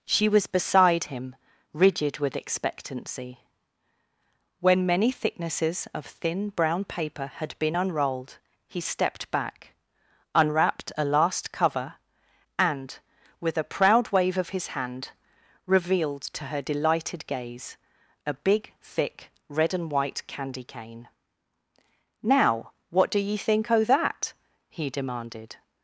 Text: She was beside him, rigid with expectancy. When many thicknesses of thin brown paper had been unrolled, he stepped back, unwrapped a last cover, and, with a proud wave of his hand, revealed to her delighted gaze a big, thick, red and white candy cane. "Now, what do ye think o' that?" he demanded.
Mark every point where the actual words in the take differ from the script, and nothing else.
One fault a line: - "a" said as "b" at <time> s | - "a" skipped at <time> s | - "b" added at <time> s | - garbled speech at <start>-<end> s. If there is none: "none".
none